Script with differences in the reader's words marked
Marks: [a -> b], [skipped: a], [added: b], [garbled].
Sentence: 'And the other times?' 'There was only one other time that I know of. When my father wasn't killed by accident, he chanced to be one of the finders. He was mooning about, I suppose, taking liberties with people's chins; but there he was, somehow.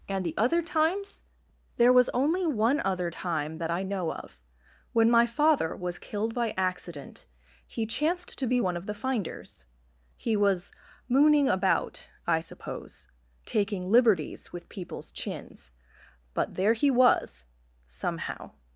'And the other times?' 'There was only one other time that I know of. When my father [wasn't -> was] killed by accident, he chanced to be one of the finders. He was mooning about, I suppose, taking liberties with people's chins; but there he was, somehow.